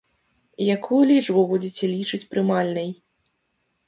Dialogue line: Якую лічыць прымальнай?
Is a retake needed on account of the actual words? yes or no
yes